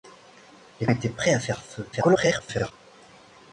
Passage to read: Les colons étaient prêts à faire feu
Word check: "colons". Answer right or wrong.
wrong